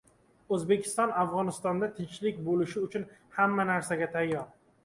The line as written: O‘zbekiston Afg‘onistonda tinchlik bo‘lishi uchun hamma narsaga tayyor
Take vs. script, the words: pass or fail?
pass